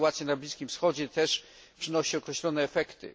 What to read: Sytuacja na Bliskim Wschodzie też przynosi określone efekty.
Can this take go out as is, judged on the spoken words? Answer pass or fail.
pass